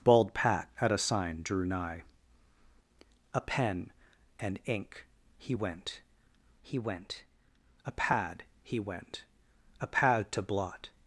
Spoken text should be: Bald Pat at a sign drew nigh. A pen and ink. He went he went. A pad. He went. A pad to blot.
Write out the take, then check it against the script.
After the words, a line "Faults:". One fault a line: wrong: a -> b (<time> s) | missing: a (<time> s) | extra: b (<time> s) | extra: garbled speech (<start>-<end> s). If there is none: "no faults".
Bald Pat at a sign drew nigh. A pen and ink. He went he went. A pad. He went. A pad to blot.
Faults:
no faults